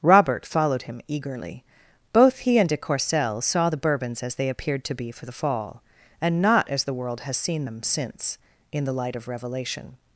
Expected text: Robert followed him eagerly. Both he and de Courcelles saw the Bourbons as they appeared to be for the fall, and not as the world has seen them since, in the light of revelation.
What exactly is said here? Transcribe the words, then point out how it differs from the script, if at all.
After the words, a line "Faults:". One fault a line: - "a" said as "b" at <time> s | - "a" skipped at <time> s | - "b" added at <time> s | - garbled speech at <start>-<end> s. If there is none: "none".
Robert followed him eagerly. Both he and de Courcelles saw the Bourbons as they appeared to be for the fall, and not as the world has seen them since, in the light of revelation.
Faults:
none